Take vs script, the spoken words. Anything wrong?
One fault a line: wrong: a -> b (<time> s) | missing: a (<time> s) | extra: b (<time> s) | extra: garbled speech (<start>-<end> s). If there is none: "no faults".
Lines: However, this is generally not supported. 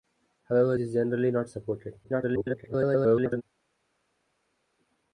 missing: this (0.8 s)
extra: garbled speech (2.0-3.4 s)